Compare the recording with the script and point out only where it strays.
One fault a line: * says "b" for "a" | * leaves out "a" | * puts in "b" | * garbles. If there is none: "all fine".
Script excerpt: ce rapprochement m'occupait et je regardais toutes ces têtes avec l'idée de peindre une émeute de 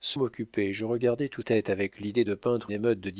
* leaves out "rapprochement"
* leaves out "ces"
* leaves out "une"